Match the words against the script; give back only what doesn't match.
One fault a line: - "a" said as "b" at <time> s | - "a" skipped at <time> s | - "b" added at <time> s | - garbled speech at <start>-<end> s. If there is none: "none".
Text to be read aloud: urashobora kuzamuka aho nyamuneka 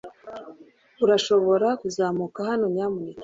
- "aho" said as "hano" at 2.5 s